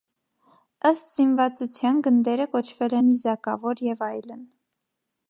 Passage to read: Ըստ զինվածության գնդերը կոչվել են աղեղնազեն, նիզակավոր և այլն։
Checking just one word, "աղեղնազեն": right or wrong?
wrong